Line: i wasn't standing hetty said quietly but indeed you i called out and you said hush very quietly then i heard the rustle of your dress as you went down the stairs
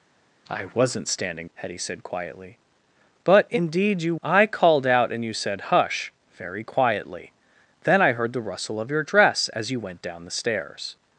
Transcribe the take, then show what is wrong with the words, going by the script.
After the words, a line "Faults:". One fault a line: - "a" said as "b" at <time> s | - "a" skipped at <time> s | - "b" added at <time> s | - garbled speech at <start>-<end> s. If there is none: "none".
i wasn't standing hetty said quietly but indeed you i called out and you said hush very quietly then i heard the rustle of your dress as you went down the stairs
Faults:
none